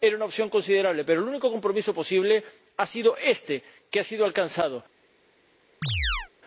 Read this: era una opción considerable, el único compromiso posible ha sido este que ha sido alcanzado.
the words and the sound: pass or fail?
fail